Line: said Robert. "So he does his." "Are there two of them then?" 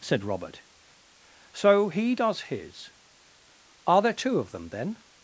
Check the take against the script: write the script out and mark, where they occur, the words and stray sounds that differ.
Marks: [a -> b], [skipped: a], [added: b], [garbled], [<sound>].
said Robert. "So he does his." "Are there two of them then?"